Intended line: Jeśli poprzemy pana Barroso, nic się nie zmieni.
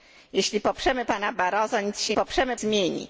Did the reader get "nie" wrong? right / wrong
wrong